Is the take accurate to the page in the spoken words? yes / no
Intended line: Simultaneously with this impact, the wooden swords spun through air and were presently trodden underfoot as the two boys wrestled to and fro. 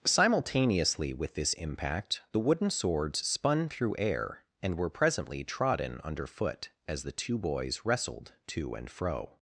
yes